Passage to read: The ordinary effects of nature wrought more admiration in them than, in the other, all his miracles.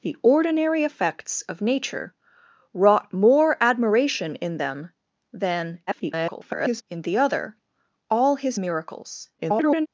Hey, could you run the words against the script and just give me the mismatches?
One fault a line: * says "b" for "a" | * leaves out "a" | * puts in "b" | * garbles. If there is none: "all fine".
* garbles
* garbles